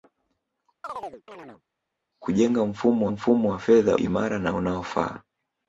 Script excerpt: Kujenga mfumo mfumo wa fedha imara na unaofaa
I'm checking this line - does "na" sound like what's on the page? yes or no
yes